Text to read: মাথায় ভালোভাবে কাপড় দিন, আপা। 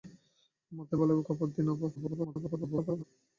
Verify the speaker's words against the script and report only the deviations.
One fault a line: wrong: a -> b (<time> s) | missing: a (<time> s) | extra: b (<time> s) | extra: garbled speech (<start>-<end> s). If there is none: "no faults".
extra: garbled speech (2.0-3.0 s)